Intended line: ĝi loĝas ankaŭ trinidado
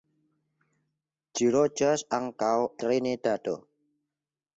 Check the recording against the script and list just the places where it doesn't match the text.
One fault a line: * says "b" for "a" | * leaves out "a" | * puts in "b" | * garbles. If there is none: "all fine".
all fine